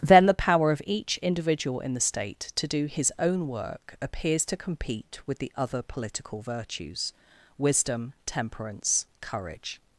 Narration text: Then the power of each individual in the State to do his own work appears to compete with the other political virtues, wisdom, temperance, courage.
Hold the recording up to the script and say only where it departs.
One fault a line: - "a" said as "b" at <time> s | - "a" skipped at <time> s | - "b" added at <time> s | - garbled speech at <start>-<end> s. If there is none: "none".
none